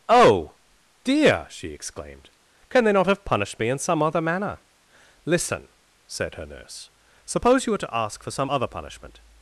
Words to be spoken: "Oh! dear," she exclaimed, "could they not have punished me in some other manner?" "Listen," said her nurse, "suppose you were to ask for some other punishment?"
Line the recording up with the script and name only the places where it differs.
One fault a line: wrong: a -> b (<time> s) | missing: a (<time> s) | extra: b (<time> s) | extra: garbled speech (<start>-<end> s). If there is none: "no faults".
wrong: could -> can (2.7 s)